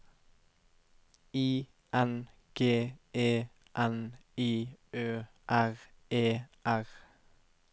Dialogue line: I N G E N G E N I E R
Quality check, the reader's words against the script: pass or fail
fail